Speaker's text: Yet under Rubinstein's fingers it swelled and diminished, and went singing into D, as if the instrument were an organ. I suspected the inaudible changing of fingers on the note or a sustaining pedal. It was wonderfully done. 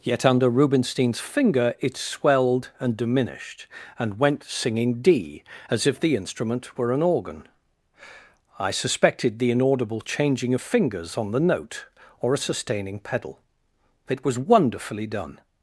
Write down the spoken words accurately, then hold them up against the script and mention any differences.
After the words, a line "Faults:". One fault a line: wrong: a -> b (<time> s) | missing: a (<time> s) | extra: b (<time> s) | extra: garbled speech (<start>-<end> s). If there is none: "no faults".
Yet under Rubinstein's finger it swelled and diminished, and went singing D, as if the instrument were an organ. I suspected the inaudible changing of fingers on the note or a sustaining pedal. It was wonderfully done.
Faults:
wrong: fingers -> finger (1.2 s)
missing: into (5.0 s)